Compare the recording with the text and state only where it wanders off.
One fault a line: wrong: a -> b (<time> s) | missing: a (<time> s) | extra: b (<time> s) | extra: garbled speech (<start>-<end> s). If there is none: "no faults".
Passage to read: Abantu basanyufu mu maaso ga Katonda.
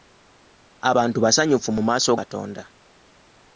missing: ga (2.1 s)